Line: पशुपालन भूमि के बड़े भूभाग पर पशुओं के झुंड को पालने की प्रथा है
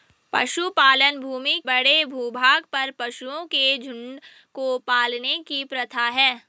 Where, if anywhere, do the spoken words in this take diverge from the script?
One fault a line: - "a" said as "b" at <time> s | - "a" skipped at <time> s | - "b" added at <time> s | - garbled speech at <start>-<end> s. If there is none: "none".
- "के" skipped at 1.6 s